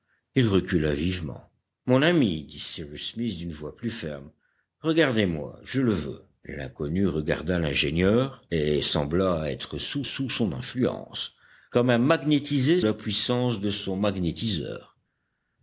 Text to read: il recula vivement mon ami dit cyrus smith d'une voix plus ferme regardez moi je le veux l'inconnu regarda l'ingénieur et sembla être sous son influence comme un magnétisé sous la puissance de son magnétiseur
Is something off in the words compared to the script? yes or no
yes